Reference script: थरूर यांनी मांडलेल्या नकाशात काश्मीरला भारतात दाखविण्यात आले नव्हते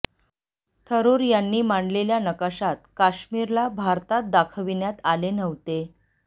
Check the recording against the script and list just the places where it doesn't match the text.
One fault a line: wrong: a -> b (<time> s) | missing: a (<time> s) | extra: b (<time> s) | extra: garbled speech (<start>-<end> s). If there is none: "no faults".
no faults